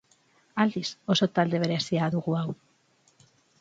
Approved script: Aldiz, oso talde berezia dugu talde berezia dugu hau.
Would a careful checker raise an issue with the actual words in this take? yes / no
yes